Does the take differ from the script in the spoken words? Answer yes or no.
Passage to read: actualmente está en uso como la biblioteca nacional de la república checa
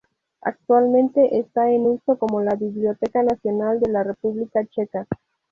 no